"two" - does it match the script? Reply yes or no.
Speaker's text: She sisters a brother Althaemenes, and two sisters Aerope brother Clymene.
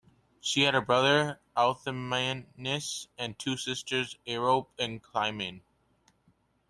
yes